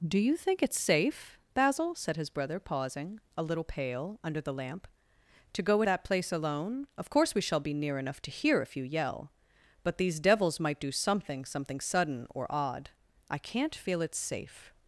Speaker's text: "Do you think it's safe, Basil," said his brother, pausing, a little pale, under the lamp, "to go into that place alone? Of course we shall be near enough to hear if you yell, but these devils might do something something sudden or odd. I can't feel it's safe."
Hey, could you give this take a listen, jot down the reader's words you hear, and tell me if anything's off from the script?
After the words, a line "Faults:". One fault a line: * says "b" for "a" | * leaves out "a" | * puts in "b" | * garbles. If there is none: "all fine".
"Do you think it's safe, Basil," said his brother, pausing, a little pale, under the lamp, "to go that place alone? Of course we shall be near enough to hear if you yell, but these devils might do something something sudden or odd. I can't feel it's safe."
Faults:
* leaves out "into"